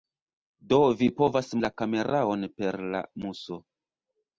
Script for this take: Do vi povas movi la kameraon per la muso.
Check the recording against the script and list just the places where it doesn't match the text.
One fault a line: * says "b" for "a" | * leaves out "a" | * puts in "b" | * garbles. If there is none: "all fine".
* leaves out "movi"